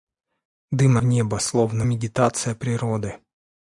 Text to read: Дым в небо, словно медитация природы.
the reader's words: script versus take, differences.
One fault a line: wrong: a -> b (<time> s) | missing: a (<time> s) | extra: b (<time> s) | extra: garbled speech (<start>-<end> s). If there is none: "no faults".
no faults